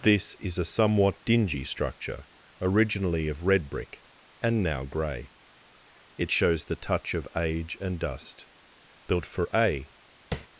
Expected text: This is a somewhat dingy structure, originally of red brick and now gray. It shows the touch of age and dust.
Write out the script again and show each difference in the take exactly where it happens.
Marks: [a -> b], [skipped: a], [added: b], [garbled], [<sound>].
This is a somewhat dingy structure, originally of red brick and now gray. It shows the touch of age and dust. [added: Built for a] [tap]